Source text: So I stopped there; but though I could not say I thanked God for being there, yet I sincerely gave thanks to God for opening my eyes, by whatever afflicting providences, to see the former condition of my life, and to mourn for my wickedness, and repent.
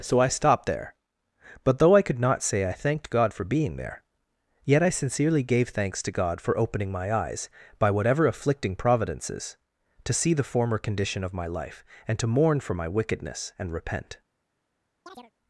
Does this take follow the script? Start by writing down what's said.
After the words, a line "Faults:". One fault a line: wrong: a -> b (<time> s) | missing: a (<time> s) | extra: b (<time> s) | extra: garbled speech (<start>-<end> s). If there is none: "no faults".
So I stopped there; but though I could not say I thanked God for being there, yet I sincerely gave thanks to God for opening my eyes, by whatever afflicting providences, to see the former condition of my life, and to mourn for my wickedness, and repent.
Faults:
no faults